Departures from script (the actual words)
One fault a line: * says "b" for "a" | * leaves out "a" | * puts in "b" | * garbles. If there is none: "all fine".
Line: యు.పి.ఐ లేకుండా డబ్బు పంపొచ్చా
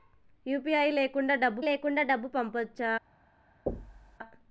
* puts in "లేకుండా డబ్బు"